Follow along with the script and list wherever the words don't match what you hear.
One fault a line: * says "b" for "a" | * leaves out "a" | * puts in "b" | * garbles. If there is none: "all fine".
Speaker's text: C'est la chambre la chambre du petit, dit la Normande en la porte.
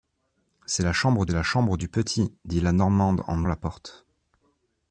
all fine